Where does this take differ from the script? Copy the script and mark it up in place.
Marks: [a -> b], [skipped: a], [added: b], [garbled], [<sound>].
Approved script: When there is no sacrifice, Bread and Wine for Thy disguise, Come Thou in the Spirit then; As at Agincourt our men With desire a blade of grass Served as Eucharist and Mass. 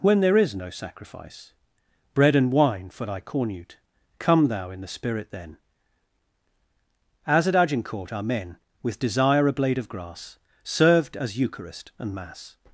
When there is no sacrifice, Bread and Wine for Thy [disguise, -> cornute] Come Thou in the Spirit then; As at Agincourt our men With desire a blade of grass Served as Eucharist and Mass.